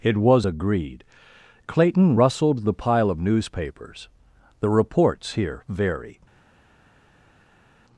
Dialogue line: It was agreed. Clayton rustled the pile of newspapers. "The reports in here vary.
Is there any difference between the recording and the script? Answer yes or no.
yes